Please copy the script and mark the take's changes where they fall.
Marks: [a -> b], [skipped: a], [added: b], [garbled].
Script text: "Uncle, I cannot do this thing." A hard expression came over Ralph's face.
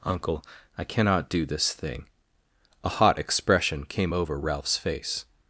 "Uncle, I cannot do this thing." A [hard -> hot] expression came over Ralph's face.